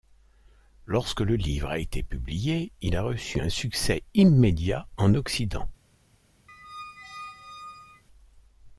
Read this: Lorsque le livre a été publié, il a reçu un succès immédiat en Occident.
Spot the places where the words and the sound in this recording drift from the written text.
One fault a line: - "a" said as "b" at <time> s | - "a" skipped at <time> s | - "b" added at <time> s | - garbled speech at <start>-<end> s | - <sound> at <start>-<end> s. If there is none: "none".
- squeak at 6.5-8.0 s